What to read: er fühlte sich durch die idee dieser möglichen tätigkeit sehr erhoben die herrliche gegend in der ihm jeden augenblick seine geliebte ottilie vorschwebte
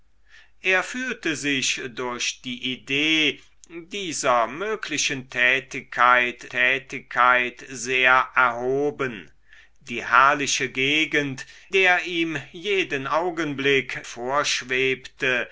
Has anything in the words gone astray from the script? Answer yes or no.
yes